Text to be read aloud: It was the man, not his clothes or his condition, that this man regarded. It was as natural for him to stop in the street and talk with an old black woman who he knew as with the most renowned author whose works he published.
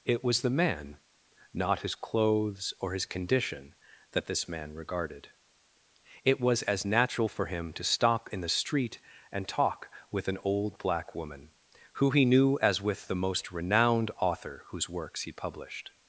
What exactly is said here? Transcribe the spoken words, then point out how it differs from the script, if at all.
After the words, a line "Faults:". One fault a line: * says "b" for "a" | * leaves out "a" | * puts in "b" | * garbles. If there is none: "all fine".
It was the man, not his clothes or his condition, that this man regarded. It was as natural for him to stop in the street and talk with an old black woman who he knew as with the most renowned author whose works he published.
Faults:
all fine